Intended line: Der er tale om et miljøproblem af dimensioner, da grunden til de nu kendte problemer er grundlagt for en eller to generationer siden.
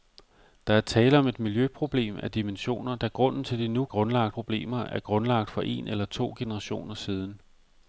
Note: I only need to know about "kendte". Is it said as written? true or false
false